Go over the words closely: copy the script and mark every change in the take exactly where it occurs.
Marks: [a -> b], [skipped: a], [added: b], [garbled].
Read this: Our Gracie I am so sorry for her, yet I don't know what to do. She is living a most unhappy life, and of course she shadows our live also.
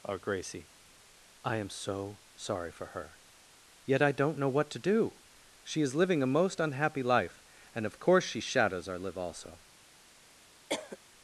Our Gracie I am so sorry for her, yet I don't know what to do. She is living a most unhappy life, and of course she shadows our live also.